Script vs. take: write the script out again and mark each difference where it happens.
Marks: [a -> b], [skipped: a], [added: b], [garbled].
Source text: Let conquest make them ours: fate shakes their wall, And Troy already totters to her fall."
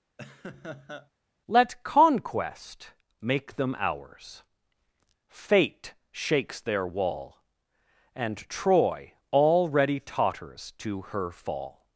Let conquest make them ours: fate shakes their wall, And Troy already totters to her fall."